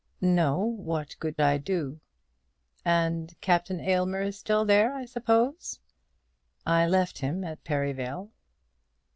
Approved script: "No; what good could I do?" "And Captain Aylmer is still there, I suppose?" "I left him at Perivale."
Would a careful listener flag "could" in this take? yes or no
yes